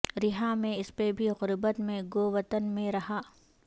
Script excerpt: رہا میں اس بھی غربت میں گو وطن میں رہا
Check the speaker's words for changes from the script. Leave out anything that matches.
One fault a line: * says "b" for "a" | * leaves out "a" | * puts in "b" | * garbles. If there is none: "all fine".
* puts in "پہ"